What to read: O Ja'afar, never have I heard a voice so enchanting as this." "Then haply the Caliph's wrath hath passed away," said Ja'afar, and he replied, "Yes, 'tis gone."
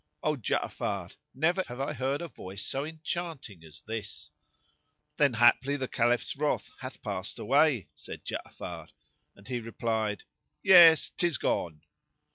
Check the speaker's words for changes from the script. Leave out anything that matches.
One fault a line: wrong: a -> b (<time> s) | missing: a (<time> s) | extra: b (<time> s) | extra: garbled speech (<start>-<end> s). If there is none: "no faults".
no faults